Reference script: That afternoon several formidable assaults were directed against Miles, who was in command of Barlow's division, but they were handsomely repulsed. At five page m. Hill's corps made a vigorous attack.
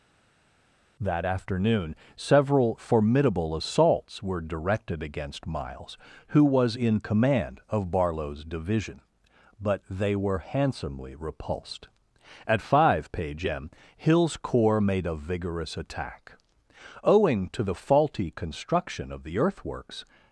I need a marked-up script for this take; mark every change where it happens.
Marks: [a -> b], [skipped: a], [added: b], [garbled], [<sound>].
That afternoon several formidable assaults were directed against Miles, who was in command of Barlow's division, but they were handsomely repulsed. At five page m. Hill's corps made a vigorous attack. [added: Owing to the faulty construction of the earthworks]